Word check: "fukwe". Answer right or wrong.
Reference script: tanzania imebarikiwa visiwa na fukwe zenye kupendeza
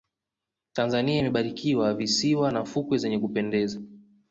right